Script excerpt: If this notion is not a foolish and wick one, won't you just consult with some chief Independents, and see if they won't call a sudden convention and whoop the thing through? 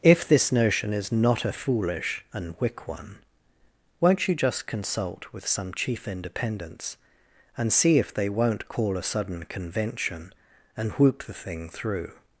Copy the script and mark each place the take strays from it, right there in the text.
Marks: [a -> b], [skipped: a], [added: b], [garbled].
If this notion is not a foolish and wick one, won't you just consult with some chief Independents, and see if they won't call a sudden convention and whoop the thing through?